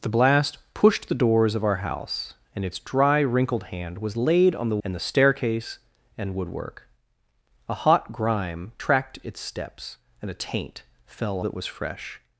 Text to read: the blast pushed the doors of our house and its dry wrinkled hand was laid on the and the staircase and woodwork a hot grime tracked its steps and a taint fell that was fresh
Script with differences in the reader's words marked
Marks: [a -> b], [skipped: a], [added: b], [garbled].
the blast pushed the doors of our house and its dry wrinkled hand was laid on the and the staircase and woodwork a hot grime tracked its steps and a taint fell that was fresh